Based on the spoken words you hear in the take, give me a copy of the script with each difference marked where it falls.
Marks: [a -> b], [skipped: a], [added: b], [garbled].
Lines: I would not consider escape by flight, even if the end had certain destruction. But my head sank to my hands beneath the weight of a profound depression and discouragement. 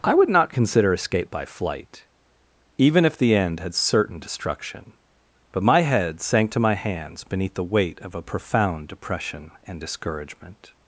I would not consider escape by flight, even if the end had certain destruction. But my head sank to my hands beneath the weight of a profound depression and discouragement.